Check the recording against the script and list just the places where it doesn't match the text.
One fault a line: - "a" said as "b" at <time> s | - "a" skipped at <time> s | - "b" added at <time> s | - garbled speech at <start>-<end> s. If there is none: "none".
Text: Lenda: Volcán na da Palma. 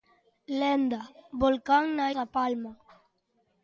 none